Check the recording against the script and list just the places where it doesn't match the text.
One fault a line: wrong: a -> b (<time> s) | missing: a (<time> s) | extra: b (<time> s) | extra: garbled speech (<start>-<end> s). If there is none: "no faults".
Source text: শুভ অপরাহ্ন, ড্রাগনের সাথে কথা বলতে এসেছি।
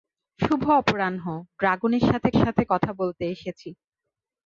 extra: সাথে (2.4 s)